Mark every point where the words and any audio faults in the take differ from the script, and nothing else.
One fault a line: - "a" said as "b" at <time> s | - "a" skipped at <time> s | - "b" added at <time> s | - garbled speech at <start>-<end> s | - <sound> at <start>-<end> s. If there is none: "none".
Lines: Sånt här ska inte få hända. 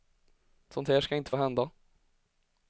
none